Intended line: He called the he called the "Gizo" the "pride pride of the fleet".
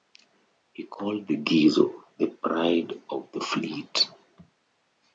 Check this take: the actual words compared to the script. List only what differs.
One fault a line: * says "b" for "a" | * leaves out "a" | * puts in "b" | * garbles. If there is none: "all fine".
* leaves out "he called the"
* leaves out "pride"